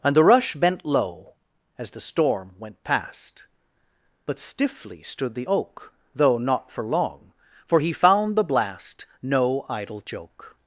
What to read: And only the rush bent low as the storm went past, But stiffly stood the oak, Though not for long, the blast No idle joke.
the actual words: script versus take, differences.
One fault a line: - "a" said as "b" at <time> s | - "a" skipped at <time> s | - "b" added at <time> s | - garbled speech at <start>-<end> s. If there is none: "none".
- "only" skipped at 0.1 s
- "for he found" added at 7.7 s